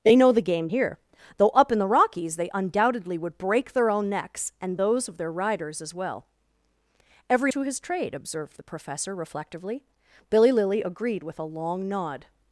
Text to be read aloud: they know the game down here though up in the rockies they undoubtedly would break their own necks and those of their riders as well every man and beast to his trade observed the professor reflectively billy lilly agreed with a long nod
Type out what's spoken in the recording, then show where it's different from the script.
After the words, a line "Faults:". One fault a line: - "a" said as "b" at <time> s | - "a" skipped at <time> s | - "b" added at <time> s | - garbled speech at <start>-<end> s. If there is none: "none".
they know the game here though up in the rockies they undoubtedly would break their own necks and those of their riders as well every to his trade observed the professor reflectively billy lilly agreed with a long nod
Faults:
- "down" skipped at 0.7 s
- "man and beast" skipped at 7.5 s